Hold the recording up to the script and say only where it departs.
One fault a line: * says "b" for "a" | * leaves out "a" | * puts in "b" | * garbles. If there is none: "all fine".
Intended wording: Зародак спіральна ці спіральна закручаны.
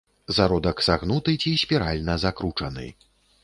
* says "сагнуты" for "спіральна"